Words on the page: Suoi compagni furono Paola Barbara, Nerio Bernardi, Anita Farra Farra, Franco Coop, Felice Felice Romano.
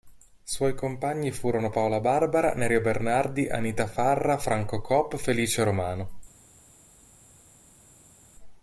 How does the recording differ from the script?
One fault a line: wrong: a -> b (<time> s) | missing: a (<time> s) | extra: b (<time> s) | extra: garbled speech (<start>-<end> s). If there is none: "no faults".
missing: Farra (4.4 s)
missing: Felice (5.6 s)